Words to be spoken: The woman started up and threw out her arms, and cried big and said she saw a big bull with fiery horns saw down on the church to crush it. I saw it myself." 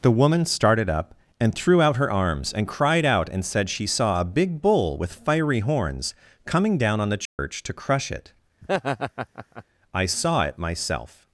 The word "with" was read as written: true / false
true